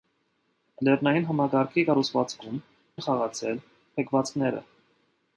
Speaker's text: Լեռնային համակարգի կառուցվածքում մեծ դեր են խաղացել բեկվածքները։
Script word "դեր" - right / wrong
wrong